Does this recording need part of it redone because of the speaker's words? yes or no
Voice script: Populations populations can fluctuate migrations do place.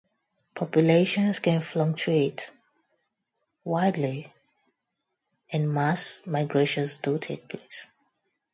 yes